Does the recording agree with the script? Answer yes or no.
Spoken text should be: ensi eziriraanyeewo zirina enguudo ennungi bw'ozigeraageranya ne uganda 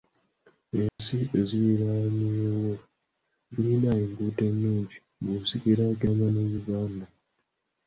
yes